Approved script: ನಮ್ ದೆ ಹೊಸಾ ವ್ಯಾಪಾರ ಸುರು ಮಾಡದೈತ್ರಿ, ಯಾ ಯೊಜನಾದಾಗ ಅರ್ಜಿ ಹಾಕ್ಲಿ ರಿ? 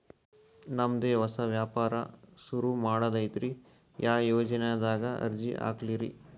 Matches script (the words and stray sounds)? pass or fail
pass